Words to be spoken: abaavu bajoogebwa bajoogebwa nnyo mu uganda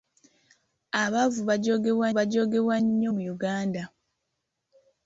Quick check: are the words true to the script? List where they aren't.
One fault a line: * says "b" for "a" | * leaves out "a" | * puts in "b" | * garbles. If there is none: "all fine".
all fine